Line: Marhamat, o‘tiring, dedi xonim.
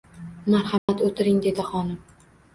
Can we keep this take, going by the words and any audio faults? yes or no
no